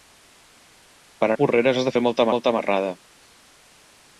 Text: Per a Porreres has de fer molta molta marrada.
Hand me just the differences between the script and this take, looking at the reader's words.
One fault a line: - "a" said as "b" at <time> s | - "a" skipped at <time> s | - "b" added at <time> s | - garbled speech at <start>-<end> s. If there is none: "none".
none